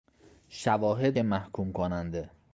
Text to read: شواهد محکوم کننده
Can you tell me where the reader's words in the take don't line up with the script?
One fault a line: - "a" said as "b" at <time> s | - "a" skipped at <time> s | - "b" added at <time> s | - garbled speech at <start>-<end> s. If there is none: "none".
none